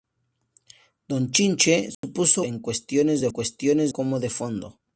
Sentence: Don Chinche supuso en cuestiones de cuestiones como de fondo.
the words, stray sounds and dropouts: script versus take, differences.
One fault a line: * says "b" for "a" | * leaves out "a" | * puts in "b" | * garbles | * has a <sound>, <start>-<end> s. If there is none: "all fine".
* has a dropout, 1.9-2.0 s